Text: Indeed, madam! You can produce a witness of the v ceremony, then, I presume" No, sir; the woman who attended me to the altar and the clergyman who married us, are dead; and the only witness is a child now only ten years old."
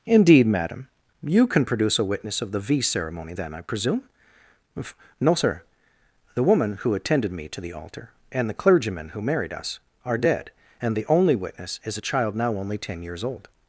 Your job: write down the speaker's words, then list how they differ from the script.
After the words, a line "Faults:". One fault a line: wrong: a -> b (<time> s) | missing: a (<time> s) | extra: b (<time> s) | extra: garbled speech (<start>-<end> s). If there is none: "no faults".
Indeed, madam! You can produce a witness of the v ceremony, then, I presume" No, sir; the woman who attended me to the altar and the clergyman who married us, are dead; and the only witness is a child now only ten years old."
Faults:
no faults